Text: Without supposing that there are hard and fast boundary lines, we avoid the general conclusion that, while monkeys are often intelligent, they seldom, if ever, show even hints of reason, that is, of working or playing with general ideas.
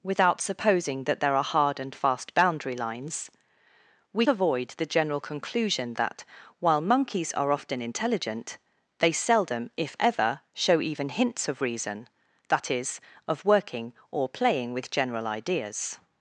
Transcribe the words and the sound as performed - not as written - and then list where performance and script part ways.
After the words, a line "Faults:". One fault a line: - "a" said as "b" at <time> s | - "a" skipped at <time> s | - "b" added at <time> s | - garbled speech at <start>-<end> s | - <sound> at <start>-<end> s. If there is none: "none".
Without supposing that there are hard and fast boundary lines, we avoid the general conclusion that, while monkeys are often intelligent, they seldom, if ever, show even hints of reason, that is, of working or playing with general ideas.
Faults:
none